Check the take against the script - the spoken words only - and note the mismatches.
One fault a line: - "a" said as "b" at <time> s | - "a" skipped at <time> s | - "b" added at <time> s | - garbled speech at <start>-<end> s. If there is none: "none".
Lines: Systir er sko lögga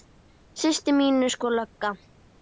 - "mín" added at 1.0 s